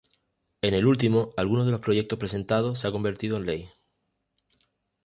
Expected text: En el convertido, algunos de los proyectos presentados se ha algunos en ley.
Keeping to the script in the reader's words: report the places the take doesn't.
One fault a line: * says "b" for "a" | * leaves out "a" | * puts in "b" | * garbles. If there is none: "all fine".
* says "último" for "convertido"
* says "convertido" for "algunos"